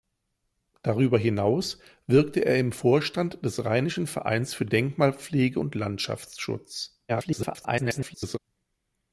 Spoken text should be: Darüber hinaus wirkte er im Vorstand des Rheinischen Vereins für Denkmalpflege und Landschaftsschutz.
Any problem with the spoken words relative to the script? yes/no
yes